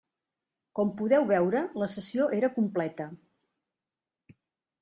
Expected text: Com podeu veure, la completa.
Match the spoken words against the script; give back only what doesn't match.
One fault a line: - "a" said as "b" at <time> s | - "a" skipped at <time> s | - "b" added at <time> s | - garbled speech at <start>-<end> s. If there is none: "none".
- "sessió era" added at 2.0 s